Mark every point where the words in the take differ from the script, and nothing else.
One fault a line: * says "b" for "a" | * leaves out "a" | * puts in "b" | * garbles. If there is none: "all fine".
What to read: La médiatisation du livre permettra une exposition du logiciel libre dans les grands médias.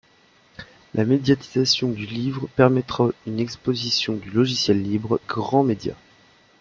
* leaves out "dans les"